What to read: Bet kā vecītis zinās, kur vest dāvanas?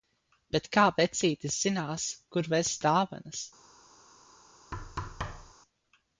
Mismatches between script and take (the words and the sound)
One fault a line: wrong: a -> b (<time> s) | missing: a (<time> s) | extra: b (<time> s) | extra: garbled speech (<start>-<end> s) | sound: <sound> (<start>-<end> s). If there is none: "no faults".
sound: thud (4.7-5.5 s)